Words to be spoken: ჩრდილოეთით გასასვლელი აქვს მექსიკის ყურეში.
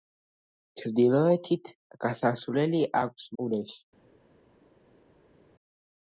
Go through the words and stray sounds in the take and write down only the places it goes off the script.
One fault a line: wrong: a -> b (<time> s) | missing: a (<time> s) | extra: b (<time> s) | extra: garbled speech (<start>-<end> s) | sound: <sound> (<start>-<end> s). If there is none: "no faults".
missing: მექსიკის (3.3 s)